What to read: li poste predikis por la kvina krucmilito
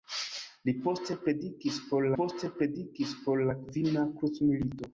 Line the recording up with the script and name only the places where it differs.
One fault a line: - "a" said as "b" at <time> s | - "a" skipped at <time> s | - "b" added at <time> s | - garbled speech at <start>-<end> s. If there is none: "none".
- "poste predikis por" added at 2.2 s